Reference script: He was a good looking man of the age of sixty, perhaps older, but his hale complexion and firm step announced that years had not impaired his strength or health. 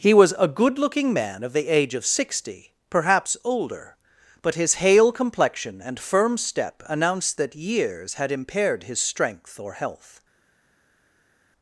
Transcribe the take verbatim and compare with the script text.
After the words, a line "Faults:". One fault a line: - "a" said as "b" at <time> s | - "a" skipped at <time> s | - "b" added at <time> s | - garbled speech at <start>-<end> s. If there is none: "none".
He was a good looking man of the age of sixty, perhaps older, but his hale complexion and firm step announced that years had impaired his strength or health.
Faults:
- "not" skipped at 8.3 s